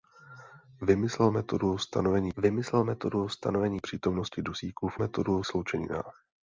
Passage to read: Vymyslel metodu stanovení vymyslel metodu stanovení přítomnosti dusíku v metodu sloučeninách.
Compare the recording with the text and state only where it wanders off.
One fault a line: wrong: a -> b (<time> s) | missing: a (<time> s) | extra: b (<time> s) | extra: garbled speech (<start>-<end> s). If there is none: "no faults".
no faults